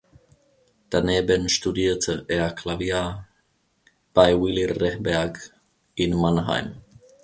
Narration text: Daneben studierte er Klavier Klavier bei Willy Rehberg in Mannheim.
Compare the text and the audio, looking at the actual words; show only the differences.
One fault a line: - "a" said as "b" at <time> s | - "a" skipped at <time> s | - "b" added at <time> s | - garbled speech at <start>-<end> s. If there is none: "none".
- "Klavier" skipped at 3.3 s